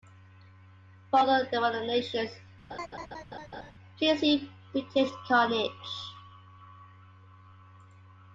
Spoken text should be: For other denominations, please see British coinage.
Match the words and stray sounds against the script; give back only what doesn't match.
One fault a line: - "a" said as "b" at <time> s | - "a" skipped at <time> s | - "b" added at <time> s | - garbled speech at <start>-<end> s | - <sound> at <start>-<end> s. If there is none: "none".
- laugh at 2.7-3.7 s